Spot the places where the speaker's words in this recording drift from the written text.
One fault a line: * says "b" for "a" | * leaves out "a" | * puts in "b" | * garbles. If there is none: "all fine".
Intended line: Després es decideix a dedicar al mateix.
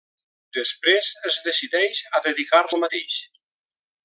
all fine